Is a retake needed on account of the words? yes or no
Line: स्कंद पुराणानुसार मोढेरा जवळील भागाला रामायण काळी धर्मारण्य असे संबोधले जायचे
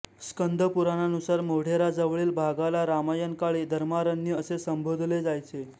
no